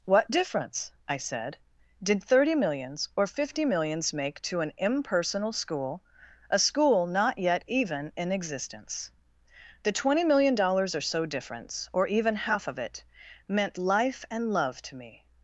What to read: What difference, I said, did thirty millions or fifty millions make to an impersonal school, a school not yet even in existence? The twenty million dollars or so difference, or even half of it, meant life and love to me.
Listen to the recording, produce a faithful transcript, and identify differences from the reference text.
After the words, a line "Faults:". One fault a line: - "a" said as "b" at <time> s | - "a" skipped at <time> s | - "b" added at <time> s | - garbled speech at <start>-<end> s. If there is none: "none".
What difference, I said, did thirty millions or fifty millions make to an impersonal school, a school not yet even in existence? The twenty million dollars or so difference, or even half of it, meant life and love to me.
Faults:
none